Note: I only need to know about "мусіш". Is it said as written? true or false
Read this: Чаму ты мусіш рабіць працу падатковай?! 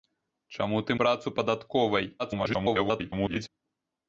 false